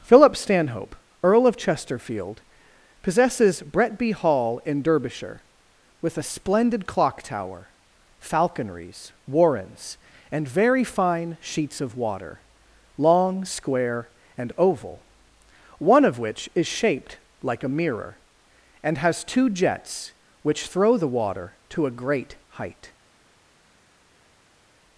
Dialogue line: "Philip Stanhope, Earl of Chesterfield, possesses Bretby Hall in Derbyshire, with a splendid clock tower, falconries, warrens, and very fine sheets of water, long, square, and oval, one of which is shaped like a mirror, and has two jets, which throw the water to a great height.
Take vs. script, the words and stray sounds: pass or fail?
pass